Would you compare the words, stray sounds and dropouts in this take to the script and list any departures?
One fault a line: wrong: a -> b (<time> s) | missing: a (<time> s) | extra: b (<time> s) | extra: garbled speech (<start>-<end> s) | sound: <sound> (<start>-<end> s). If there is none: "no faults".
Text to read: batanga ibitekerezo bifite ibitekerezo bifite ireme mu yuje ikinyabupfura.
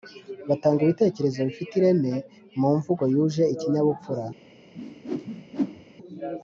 missing: ibitekerezo bifite (1.7 s)
extra: mvugo (2.8 s)
sound: whoosh (4.7-5.9 s)